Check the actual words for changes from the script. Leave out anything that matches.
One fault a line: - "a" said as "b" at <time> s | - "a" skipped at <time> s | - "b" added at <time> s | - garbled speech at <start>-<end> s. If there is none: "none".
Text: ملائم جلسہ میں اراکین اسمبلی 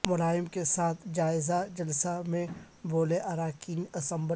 - "کے ساتھ جائزہ" added at 0.5 s
- "بولے" added at 2.8 s